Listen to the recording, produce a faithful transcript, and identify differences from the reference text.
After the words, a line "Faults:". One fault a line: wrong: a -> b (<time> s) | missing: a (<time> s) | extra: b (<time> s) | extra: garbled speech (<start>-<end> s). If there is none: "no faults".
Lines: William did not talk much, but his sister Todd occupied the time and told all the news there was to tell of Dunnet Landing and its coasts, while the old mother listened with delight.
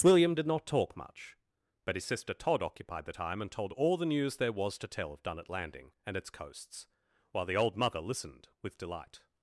William did not talk much, but his sister Todd occupied the time and told all the news there was to tell of Dunnet Landing and its coasts, while the old mother listened with delight.
Faults:
no faults